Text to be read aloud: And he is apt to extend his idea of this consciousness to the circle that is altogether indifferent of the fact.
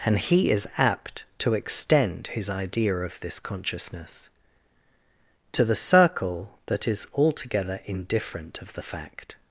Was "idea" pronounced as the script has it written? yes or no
yes